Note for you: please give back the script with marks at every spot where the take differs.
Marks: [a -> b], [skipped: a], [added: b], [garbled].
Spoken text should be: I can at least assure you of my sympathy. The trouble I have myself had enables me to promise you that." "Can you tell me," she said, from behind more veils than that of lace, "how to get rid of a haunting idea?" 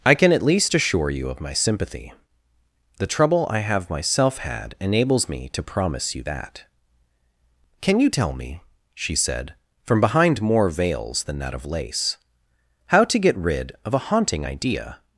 I can at least assure you of my sympathy. The trouble I have myself had enables me to promise you that." "Can you tell me," she said, from behind more veils than that of lace, "how to get rid of a haunting idea?"